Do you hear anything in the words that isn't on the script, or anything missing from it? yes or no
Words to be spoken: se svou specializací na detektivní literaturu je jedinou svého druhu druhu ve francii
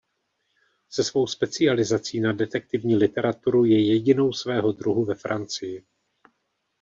yes